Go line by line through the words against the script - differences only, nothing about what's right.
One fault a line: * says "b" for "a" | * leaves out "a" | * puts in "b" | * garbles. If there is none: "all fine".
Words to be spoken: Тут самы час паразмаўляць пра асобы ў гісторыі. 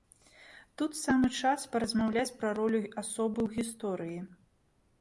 * puts in "ролю"